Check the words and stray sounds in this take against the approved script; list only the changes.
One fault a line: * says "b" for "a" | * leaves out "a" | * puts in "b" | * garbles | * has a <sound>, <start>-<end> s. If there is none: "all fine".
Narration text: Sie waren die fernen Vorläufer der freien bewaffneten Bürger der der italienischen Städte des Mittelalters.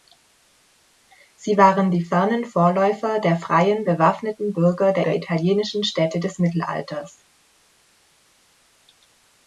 all fine